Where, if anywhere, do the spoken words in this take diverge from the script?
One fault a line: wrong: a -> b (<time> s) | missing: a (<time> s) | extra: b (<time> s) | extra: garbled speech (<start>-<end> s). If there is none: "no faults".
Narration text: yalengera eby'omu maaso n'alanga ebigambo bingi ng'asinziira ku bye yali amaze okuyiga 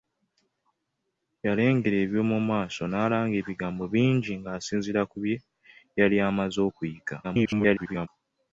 extra: garbled speech (7.2-8.1 s)